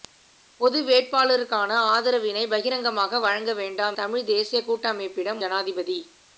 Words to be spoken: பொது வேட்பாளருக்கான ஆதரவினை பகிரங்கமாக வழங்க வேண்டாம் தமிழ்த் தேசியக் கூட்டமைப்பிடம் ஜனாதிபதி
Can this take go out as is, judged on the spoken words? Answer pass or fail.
pass